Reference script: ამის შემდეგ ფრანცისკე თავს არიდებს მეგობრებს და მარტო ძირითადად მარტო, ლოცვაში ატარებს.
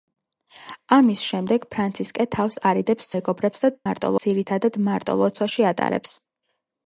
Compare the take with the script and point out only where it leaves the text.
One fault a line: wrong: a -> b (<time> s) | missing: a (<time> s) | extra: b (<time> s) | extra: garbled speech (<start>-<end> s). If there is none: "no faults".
no faults